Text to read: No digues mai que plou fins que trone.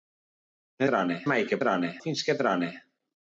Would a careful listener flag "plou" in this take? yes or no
yes